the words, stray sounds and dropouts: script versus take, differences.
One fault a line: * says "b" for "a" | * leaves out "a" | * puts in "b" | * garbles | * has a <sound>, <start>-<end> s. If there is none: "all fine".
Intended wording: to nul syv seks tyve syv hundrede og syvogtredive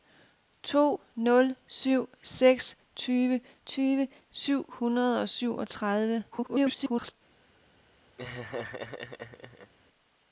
* puts in "tyve"
* garbles
* has a laugh, 8.2-9.7 s